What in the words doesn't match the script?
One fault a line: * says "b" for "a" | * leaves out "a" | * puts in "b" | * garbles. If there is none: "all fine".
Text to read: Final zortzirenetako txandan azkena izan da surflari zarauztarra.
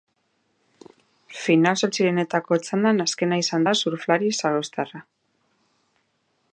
all fine